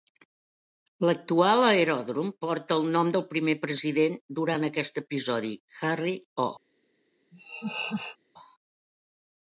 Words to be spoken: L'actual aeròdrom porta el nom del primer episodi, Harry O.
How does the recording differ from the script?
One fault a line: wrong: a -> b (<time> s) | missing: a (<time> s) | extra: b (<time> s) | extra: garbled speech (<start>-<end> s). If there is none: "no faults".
extra: president durant aquest (3.7 s)